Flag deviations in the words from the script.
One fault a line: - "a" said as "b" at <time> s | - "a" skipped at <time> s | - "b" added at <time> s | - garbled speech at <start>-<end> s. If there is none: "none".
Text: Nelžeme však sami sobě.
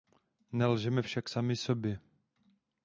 none